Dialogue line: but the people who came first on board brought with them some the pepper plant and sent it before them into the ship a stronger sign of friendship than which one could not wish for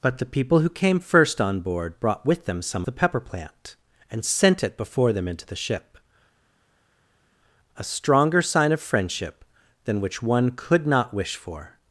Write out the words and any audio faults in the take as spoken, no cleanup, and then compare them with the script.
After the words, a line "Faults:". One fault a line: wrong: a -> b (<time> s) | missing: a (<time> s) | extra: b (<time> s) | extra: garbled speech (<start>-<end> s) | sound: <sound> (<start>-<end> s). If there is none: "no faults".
but the people who came first on board brought with them some the pepper plant and sent it before them into the ship a stronger sign of friendship than which one could not wish for
Faults:
no faults